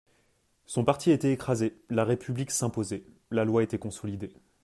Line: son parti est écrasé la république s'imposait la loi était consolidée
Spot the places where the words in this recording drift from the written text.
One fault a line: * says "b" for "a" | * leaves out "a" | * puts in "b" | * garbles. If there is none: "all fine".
* says "était" for "est"